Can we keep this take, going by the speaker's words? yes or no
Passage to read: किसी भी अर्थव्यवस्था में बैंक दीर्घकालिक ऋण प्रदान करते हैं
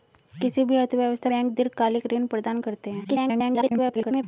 no